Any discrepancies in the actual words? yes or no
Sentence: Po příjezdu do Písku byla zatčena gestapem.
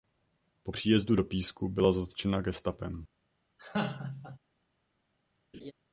no